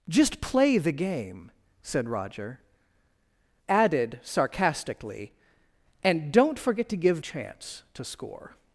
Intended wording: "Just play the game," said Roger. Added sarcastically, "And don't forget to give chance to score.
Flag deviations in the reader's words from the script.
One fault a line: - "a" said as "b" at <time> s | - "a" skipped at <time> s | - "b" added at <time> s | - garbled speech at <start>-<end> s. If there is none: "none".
none